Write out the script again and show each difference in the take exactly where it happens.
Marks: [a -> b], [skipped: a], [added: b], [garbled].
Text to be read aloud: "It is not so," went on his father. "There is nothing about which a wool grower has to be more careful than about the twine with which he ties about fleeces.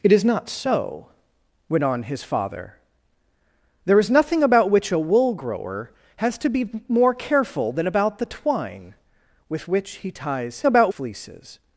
"It is not so," went on his father. "There is nothing about which a wool grower has to be more careful than about the twine with which he ties about fleeces.